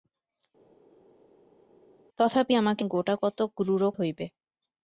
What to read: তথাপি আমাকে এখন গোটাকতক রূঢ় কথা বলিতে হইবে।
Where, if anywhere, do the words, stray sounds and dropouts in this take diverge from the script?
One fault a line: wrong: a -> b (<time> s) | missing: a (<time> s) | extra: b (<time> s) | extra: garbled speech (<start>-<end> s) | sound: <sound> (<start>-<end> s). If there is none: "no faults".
missing: এখন (2.8 s)
missing: কথা বলিতে (3.9 s)